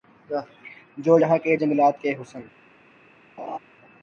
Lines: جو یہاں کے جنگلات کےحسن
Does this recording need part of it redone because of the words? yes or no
no